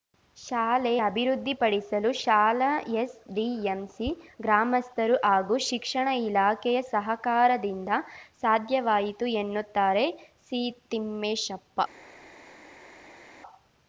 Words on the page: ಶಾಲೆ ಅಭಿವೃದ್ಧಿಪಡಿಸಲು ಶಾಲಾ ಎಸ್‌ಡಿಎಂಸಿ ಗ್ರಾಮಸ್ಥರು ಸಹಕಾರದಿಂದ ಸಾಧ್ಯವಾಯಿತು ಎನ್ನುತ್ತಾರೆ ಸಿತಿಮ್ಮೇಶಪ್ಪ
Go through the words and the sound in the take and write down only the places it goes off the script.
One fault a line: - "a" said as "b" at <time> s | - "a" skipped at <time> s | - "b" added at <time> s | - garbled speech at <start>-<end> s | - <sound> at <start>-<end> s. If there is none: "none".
- "ಹಾಗೂ ಶಿಕ್ಷಣ ಇಲಾಖೆಯ" added at 5.2 s